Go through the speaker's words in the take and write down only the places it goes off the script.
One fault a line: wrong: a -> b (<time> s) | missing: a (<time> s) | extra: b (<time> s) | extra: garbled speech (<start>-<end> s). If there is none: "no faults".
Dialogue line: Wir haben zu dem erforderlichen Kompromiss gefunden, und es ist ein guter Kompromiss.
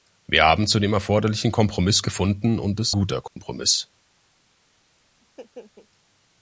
missing: ist ein (3.0 s)